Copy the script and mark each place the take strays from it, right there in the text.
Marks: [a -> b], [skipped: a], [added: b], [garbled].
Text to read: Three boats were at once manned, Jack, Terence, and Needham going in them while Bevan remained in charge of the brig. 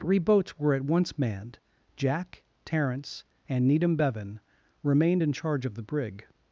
Three boats were at once manned, Jack, Terence, and Needham [skipped: going in them while] Bevan remained in charge of the brig.